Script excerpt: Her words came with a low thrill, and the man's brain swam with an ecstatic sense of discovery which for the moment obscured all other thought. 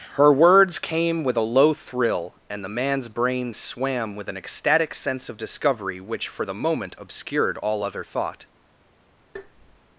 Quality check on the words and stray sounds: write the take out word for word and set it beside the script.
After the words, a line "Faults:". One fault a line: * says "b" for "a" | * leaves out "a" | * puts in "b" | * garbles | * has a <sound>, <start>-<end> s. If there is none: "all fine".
Her words came with a low thrill, and the man's brain swam with an ecstatic sense of discovery which for the moment obscured all other thought.
Faults:
* has a tap, 9.4-9.8 s